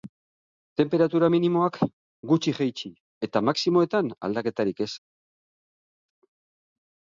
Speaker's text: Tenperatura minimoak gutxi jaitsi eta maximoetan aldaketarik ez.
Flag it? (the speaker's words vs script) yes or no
no